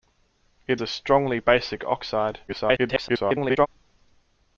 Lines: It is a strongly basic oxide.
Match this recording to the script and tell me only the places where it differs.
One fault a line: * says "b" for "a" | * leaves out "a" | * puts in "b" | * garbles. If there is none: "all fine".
* leaves out "is"
* garbles